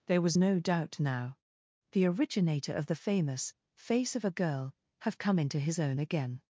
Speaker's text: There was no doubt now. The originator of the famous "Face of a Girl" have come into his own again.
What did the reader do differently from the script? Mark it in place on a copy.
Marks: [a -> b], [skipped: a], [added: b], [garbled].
There was no doubt now. The originator of the famous "Face of a Girl" have come into his own again.